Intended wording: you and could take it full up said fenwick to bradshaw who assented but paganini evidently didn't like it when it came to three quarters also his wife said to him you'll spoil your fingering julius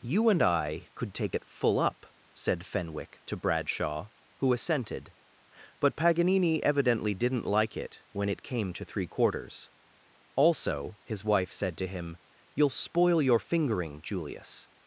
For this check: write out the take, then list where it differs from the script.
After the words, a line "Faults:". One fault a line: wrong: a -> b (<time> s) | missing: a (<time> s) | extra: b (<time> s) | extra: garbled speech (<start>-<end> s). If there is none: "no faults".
you and i could take it full up said fenwick to bradshaw who assented but paganini evidently didn't like it when it came to three quarters also his wife said to him you'll spoil your fingering julius
Faults:
extra: i (0.4 s)